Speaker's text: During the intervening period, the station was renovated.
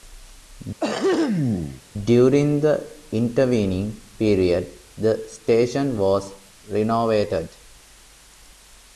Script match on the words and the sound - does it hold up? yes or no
no